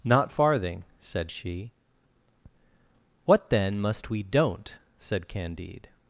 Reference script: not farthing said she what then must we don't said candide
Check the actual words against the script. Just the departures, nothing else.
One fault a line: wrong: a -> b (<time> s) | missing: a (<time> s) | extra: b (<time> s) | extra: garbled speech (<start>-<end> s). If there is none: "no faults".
no faults